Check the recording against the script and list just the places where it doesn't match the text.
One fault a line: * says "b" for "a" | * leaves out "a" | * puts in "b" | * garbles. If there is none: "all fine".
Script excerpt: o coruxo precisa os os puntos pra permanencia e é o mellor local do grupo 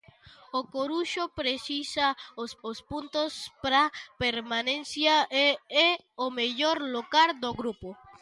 all fine